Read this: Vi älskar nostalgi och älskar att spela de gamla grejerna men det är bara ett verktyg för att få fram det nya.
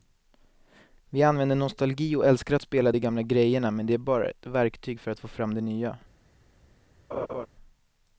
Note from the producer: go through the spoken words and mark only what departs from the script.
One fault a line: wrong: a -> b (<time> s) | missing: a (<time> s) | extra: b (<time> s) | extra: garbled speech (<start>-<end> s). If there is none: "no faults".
wrong: älskar -> använder (1.2 s)